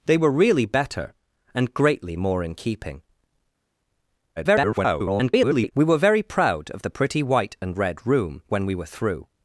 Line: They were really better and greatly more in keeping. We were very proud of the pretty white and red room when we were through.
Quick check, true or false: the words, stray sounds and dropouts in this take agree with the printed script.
false